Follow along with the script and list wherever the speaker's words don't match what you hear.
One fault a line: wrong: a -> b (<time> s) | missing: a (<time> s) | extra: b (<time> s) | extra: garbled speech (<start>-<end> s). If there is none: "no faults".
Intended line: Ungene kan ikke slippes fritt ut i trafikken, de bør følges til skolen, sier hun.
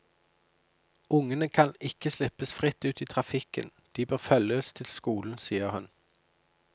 no faults